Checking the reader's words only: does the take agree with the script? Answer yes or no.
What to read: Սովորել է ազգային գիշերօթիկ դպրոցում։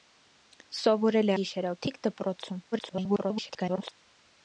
no